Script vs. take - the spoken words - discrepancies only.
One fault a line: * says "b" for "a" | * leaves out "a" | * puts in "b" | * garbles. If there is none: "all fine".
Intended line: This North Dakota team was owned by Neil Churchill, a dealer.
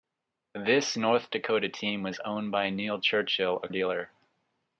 all fine